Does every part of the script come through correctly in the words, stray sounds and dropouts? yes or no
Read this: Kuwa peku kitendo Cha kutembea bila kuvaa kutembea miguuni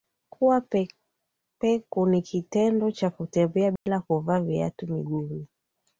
no